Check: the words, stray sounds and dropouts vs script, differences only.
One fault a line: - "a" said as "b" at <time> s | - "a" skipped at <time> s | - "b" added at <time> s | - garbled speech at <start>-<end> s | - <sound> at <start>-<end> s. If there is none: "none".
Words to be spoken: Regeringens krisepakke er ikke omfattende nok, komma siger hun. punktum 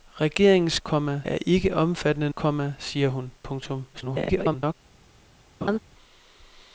- "krisepakke" said as "komma" at 0.8 s
- "nok" skipped at 2.3 s
- garbled speech at 3.9-4.7 s
- laugh at 5.6-5.8 s